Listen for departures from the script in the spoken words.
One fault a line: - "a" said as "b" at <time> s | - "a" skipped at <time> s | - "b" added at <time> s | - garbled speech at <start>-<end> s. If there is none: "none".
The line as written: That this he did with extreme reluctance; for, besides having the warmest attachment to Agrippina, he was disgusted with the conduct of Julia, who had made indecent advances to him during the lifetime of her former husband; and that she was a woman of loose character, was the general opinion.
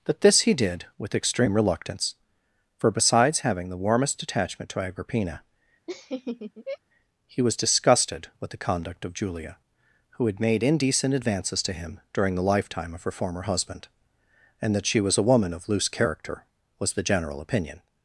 none